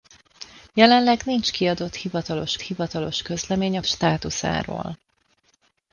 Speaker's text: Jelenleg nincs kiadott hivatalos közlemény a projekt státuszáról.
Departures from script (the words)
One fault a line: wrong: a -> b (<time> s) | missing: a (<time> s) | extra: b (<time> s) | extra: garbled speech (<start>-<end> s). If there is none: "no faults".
extra: hivatalos (2.6 s)
missing: projekt (3.8 s)